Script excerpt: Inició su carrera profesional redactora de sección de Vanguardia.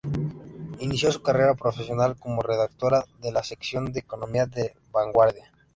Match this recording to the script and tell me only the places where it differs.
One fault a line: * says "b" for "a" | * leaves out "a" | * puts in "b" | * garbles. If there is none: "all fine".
* puts in "como"
* puts in "la"
* puts in "economía de La"